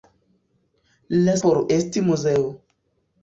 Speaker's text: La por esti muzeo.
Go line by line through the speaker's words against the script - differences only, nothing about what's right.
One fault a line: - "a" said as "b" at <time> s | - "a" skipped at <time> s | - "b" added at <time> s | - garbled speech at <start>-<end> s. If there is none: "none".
none